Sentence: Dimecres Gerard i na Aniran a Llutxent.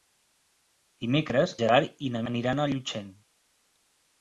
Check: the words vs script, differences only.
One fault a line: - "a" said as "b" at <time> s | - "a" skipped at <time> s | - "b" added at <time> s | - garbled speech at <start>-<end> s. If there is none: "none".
none